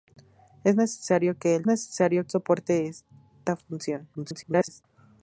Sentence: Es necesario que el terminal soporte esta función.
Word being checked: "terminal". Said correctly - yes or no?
no